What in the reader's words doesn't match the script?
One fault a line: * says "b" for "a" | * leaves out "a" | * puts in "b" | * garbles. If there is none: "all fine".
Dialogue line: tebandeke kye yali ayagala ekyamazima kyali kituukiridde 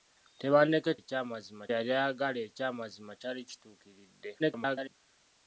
* says "ekyamazima" for "kye"
* garbles